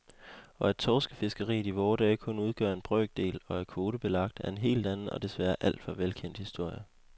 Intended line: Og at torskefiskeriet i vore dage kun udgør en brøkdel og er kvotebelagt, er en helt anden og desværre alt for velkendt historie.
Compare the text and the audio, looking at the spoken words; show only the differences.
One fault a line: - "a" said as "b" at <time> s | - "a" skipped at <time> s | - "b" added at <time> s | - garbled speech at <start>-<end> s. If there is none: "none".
none